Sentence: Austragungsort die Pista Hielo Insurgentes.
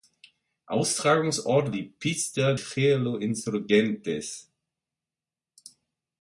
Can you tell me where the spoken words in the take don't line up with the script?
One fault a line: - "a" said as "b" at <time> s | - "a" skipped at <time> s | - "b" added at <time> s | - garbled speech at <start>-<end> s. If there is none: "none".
none